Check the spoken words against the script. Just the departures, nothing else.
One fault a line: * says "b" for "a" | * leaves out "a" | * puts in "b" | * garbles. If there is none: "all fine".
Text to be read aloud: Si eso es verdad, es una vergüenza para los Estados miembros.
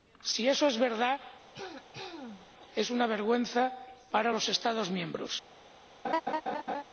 all fine